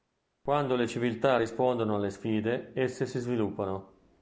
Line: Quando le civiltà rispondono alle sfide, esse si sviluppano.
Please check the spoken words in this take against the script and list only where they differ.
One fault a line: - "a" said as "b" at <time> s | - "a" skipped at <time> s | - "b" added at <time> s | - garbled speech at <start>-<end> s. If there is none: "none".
none